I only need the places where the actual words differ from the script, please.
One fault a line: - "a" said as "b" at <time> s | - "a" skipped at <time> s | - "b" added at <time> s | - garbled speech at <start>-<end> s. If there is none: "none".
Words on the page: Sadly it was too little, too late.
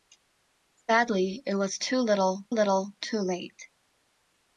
- "little" added at 2.5 s